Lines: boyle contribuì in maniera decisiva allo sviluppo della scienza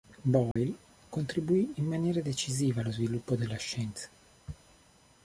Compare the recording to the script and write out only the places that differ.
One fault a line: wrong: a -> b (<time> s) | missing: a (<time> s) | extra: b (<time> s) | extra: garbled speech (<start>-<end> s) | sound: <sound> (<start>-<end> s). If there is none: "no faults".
sound: dropout (0.5-0.6 s)